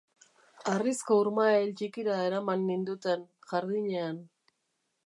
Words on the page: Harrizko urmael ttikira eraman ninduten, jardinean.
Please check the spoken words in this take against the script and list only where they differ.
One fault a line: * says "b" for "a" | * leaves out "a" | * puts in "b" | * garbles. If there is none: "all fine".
all fine